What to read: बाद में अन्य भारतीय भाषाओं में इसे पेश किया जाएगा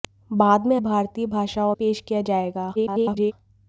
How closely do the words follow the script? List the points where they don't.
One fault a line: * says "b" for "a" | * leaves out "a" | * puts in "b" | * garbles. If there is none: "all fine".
* leaves out "अन्य"
* leaves out "में इसे"
* garbles